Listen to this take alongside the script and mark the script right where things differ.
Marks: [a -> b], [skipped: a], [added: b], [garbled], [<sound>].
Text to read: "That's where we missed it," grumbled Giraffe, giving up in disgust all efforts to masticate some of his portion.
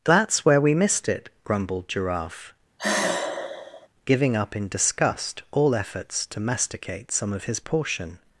"That's where we missed it," grumbled Giraffe, [sigh] giving up in disgust all efforts to masticate some of his portion.